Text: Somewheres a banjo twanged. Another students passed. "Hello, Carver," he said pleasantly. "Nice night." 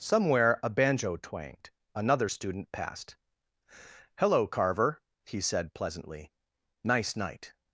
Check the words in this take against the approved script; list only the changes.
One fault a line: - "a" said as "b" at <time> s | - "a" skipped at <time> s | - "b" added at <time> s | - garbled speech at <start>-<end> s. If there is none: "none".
- "Somewheres" said as "Somewhere" at 0.0 s
- "students" said as "student" at 2.3 s